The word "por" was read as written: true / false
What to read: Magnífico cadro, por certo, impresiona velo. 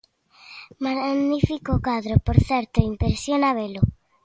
true